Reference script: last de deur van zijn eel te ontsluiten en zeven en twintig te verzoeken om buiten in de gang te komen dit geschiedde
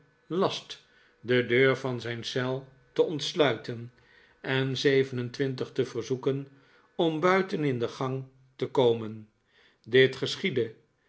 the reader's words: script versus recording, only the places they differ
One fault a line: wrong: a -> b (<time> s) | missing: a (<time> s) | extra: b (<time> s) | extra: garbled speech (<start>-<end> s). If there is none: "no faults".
no faults